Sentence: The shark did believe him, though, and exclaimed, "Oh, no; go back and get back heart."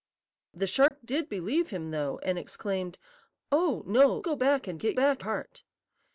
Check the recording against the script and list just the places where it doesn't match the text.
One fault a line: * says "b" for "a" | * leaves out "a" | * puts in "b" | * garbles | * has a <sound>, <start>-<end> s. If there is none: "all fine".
* has a dropout, 0.9-0.9 s